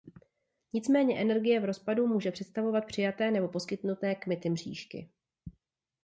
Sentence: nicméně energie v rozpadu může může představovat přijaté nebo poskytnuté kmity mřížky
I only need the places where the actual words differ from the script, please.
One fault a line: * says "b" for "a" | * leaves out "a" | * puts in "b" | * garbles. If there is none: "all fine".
* leaves out "může"